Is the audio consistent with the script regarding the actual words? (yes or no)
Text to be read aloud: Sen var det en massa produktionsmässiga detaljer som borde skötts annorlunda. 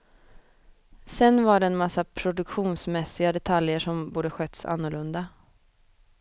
yes